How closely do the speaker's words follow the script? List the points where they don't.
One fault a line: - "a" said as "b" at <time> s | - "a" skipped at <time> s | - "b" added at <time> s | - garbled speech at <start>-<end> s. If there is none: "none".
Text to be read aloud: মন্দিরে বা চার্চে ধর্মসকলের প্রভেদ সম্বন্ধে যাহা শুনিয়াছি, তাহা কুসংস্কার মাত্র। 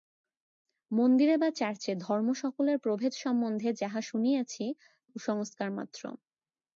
- "তাহা" skipped at 4.6 s